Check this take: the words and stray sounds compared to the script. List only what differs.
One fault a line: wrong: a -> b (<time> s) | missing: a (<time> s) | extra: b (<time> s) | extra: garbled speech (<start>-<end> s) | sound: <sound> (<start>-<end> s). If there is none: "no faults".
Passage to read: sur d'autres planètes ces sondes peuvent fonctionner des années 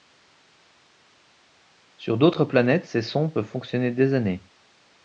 no faults